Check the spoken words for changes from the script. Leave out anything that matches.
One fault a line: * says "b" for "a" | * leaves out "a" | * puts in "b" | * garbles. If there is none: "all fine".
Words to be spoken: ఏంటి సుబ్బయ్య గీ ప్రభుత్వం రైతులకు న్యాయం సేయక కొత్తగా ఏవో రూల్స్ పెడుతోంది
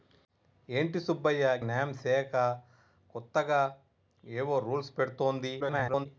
* leaves out "గీ ప్రభుత్వం రైతులకు"
* garbles